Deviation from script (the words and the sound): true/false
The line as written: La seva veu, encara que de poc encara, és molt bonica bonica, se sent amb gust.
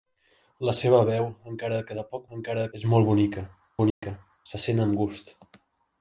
true